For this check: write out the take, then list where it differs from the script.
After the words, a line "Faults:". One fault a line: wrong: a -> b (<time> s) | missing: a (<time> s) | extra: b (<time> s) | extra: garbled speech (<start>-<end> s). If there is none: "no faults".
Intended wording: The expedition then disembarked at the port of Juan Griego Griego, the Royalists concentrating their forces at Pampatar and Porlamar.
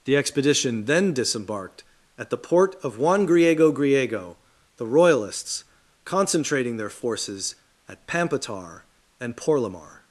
The expedition then disembarked at the port of Juan Griego Griego, the Royalists concentrating their forces at Pampatar and Porlamar.
Faults:
no faults